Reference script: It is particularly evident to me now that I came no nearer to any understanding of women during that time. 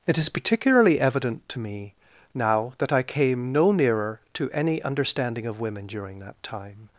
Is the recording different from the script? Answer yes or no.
no